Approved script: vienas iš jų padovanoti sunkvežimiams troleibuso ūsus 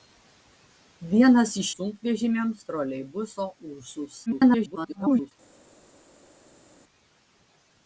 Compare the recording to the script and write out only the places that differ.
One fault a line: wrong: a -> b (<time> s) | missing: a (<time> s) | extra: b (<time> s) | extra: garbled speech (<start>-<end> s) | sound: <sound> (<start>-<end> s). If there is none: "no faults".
missing: jų padovanoti (1.7 s)
extra: garbled speech (4.3-5.3 s)